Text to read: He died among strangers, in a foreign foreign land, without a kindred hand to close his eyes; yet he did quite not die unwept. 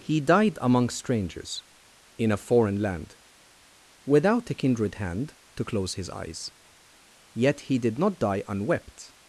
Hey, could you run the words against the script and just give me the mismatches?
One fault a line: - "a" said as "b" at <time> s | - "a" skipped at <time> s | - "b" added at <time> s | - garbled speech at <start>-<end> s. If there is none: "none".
- "foreign" skipped at 2.8 s
- "quite" skipped at 8.0 s